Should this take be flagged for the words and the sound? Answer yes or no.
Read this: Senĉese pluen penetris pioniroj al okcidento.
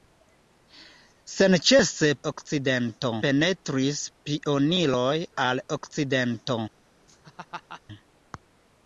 yes